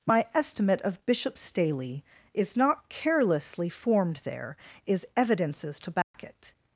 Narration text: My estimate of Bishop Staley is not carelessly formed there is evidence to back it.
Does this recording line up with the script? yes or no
no